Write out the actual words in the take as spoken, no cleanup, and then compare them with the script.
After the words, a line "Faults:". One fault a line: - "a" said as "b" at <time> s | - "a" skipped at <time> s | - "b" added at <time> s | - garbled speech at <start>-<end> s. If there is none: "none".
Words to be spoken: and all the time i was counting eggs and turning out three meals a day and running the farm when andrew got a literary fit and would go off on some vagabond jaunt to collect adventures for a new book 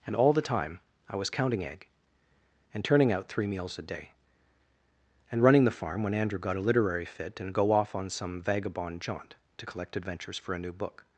and all the time i was counting egg and turning out three meals a day and running the farm when andrew got a literary fit and go off on some vagabond jaunt to collect adventures for a new book
Faults:
- "eggs" said as "egg" at 1.6 s
- "would" skipped at 7.5 s